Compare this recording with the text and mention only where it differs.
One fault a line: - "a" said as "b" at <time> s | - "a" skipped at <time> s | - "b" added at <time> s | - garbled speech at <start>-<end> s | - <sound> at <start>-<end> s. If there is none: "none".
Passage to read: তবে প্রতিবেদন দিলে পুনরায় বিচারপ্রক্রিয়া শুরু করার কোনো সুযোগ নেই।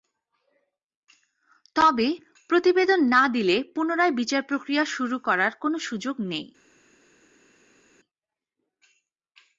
- "না" added at 3.0 s